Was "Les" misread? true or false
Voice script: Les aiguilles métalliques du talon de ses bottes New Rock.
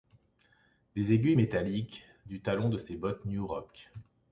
false